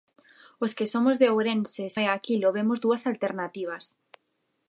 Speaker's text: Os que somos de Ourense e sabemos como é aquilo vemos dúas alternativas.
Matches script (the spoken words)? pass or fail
fail